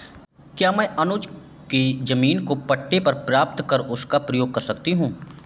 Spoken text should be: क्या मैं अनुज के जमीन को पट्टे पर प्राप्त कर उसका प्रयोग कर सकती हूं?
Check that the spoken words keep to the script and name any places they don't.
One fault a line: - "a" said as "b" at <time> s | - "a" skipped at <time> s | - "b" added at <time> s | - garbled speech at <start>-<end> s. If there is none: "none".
none